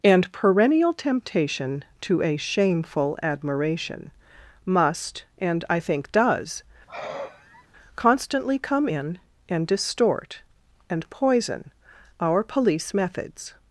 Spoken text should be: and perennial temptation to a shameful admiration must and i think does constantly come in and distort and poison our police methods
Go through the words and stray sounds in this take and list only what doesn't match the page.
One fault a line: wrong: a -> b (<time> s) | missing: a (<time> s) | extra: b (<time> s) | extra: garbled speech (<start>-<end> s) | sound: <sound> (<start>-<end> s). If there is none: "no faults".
sound: sigh (6.9-7.7 s)